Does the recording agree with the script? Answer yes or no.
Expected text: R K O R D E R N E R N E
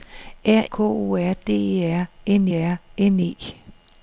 yes